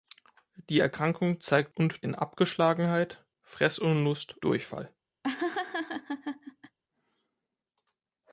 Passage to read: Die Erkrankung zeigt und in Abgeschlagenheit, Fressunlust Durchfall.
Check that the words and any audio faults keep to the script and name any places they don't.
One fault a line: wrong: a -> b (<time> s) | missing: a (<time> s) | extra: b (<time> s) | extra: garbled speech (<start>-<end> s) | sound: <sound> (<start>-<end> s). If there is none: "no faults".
sound: laugh (5.2-6.8 s)